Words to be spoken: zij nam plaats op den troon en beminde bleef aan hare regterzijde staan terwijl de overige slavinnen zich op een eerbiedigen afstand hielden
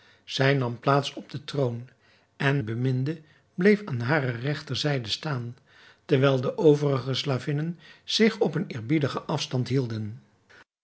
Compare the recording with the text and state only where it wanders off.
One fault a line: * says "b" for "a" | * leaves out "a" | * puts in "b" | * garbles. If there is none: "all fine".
all fine